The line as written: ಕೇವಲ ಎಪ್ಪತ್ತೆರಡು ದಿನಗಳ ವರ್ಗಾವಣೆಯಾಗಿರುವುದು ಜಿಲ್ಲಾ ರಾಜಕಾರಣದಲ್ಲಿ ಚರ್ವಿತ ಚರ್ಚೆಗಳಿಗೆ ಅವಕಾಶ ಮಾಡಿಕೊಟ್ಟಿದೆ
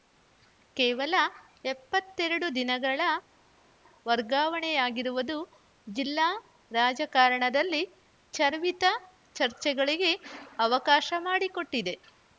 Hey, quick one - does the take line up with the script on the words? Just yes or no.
yes